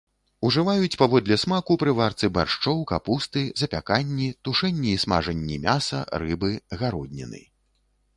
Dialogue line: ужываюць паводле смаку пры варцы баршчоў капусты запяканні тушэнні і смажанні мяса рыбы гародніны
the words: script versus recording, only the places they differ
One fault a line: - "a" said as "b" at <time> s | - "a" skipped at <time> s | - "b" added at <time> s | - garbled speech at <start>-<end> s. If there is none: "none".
none